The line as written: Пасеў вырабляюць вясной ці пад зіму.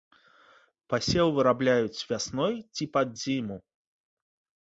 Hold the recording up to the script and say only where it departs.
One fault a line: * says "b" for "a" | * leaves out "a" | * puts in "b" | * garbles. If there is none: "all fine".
all fine